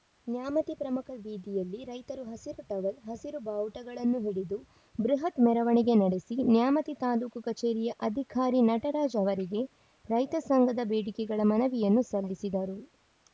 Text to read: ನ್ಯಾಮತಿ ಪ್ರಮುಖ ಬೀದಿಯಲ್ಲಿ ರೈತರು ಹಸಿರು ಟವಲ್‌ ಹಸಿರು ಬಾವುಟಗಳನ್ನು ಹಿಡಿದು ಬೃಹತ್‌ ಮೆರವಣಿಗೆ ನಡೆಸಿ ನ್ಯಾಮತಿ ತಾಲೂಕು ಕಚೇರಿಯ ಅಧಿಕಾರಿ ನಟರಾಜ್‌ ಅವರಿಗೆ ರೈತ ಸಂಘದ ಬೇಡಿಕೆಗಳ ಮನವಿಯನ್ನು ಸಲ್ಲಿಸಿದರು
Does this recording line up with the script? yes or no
yes